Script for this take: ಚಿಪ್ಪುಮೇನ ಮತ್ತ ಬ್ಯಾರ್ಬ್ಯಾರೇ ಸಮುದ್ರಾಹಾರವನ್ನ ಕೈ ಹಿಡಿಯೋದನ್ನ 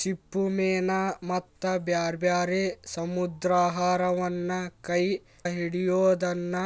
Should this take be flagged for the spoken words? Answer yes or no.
no